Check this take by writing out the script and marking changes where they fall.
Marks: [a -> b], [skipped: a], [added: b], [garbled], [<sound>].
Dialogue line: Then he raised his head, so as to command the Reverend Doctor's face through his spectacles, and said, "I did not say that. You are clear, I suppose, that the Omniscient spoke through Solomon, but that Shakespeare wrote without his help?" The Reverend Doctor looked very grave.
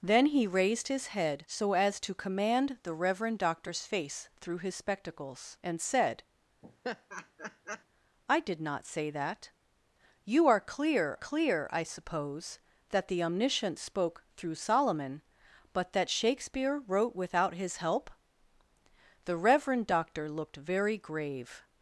Then he raised his head, so as to command the Reverend Doctor's face through his spectacles, and said, [laugh] "I did not say that. You are clear, [added: clear] I suppose, that the Omniscient spoke through Solomon, but that Shakespeare wrote without his help?" The Reverend Doctor looked very grave.